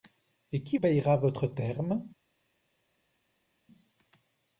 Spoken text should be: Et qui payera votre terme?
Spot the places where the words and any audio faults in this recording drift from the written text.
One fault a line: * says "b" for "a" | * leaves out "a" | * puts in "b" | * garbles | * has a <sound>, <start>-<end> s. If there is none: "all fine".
all fine